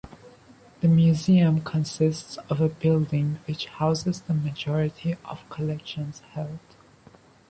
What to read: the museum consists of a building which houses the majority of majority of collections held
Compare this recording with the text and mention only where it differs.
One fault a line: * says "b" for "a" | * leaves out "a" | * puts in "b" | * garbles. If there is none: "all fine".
* leaves out "majority of"